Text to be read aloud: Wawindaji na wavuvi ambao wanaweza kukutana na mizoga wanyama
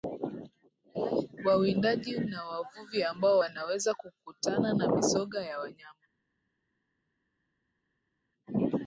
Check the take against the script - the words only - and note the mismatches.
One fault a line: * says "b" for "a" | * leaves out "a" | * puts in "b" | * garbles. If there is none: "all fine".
* puts in "ya"